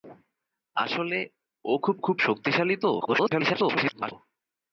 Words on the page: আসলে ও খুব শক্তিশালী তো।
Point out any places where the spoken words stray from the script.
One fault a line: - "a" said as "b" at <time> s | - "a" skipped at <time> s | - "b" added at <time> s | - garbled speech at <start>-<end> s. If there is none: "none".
- "খুব" added at 2.0 s
- garbled speech at 3.0-4.1 s